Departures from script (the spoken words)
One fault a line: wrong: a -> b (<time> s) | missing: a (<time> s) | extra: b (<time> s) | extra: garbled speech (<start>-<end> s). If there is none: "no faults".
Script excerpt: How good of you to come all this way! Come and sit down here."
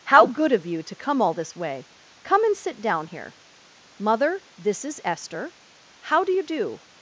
extra: Mother this is Esther How do you do (4.0 s)